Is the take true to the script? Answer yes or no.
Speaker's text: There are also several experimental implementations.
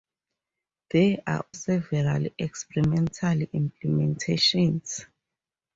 no